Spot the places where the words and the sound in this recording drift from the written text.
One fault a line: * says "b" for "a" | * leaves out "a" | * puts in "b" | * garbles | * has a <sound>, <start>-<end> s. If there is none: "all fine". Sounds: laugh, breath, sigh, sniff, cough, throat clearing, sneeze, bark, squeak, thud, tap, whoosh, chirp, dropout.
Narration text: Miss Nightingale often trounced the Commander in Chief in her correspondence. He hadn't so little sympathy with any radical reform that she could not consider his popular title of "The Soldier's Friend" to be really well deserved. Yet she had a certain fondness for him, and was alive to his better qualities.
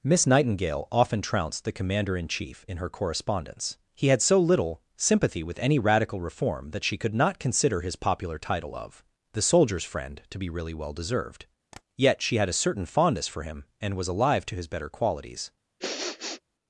* says "had" for "hadn't"
* has a tap, 11.7-11.8 s
* has a sniff, 15.8-16.4 s